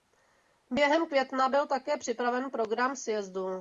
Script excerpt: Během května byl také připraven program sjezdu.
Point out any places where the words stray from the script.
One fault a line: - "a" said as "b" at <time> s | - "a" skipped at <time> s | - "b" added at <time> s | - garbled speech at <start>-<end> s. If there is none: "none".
none